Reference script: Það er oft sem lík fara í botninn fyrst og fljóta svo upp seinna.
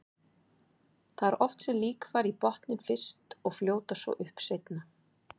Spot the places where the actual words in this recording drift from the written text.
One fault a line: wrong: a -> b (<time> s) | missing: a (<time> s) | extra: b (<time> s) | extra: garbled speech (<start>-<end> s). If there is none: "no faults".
no faults